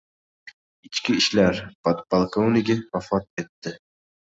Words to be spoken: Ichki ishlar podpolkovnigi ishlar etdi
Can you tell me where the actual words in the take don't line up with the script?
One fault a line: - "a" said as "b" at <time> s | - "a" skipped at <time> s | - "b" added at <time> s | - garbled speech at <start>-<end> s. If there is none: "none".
- "ishlar" said as "vafot" at 3.0 s